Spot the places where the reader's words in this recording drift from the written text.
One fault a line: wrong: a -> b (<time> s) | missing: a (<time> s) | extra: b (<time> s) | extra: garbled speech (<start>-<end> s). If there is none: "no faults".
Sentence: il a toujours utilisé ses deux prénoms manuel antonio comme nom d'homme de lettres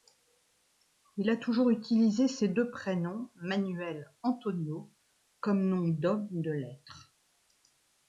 no faults